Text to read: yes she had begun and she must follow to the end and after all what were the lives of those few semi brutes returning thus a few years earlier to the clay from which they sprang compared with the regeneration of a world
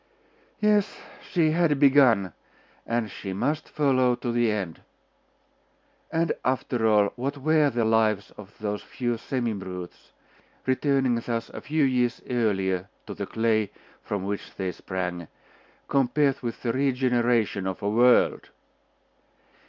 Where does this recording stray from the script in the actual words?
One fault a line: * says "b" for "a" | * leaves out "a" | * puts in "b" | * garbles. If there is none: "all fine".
all fine